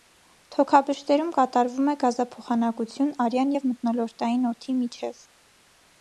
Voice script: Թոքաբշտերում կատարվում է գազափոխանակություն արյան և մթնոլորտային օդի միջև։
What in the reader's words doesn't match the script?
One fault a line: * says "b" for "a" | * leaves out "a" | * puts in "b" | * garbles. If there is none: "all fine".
all fine